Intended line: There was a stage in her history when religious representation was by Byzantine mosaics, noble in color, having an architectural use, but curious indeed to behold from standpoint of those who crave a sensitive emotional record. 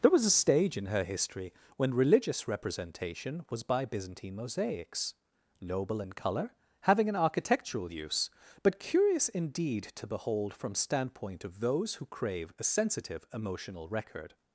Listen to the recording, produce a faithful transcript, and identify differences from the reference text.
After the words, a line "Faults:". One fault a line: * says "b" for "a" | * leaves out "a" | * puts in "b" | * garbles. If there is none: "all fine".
There was a stage in her history when religious representation was by Byzantine mosaics, noble in color, having an architectural use, but curious indeed to behold from standpoint of those who crave a sensitive emotional record.
Faults:
all fine